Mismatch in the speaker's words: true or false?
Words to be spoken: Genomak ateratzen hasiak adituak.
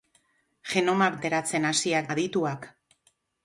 false